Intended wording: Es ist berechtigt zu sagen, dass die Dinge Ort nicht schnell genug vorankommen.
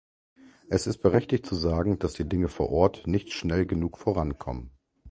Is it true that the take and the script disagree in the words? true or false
true